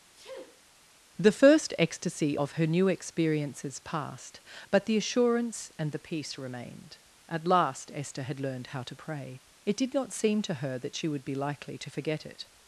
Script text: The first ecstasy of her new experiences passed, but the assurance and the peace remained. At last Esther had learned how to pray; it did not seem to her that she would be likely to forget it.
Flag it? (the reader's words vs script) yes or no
no